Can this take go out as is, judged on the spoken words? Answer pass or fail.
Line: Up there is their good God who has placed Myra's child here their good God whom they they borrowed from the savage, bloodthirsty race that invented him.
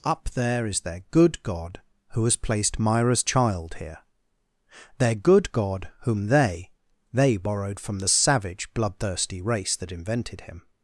pass